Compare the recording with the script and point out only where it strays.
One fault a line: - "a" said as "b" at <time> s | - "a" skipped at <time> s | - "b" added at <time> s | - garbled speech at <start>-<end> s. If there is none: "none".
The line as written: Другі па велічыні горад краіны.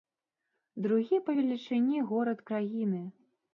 none